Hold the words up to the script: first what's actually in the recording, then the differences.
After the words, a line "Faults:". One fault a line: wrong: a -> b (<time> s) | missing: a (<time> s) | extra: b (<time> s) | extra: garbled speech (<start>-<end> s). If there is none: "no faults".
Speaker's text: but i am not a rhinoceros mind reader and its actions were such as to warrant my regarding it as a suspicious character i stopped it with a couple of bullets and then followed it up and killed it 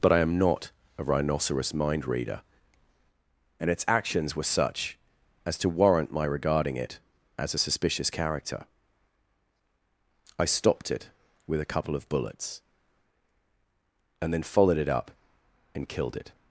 but i am not a rhinoceros mind reader and its actions were such as to warrant my regarding it as a suspicious character i stopped it with a couple of bullets and then followed it up and killed it
Faults:
no faults